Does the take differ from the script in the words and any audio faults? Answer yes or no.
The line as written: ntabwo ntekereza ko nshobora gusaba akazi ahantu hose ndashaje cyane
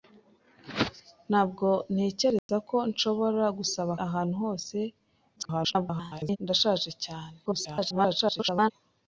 yes